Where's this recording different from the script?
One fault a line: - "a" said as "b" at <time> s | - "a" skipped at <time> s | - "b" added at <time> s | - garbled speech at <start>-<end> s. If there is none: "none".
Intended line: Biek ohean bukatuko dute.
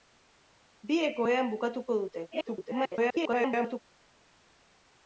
- garbled speech at 2.3-3.8 s